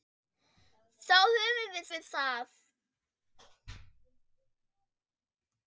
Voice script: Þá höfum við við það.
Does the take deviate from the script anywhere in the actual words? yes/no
no